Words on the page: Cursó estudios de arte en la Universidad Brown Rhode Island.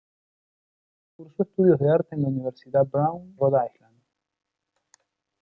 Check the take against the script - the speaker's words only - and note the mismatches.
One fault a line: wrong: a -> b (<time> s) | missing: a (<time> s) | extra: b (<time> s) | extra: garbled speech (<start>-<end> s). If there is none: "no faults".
no faults